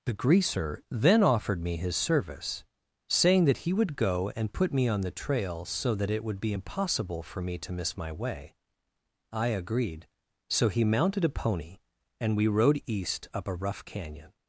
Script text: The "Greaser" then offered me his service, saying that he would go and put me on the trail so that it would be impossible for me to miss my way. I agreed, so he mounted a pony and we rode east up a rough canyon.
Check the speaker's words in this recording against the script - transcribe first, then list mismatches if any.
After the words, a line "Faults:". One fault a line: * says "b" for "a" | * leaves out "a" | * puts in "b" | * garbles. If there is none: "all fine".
The "Greaser" then offered me his service, saying that he would go and put me on the trail so that it would be impossible for me to miss my way. I agreed, so he mounted a pony and we rode east up a rough canyon.
Faults:
all fine